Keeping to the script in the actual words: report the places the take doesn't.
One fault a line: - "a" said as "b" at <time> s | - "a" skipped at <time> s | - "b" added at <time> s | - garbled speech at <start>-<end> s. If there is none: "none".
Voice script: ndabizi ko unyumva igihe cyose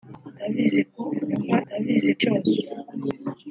- "igihe" said as "ndabizi" at 1.7 s